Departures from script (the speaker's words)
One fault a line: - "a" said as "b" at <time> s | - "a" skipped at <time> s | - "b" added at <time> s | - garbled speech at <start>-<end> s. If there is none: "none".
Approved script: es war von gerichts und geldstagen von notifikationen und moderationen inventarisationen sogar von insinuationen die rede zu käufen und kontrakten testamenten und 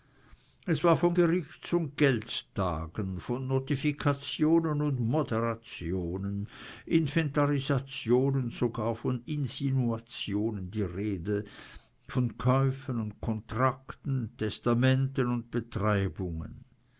- "zu" said as "von" at 12.1 s